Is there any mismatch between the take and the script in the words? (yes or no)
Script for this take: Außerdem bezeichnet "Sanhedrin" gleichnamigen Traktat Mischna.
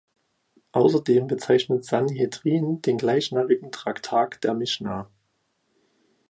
yes